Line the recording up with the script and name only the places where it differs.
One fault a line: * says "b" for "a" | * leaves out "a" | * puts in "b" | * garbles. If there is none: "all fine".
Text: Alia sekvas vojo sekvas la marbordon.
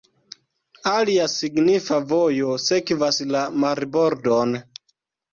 * says "signifa" for "sekvas"